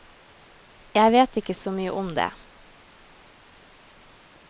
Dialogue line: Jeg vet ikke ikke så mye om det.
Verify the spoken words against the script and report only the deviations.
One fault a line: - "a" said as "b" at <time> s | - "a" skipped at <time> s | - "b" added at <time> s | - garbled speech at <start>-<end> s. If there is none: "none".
- "ikke" skipped at 1.6 s